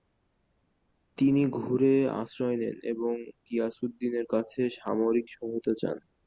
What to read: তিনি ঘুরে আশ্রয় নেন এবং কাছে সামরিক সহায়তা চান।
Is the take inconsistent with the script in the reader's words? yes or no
yes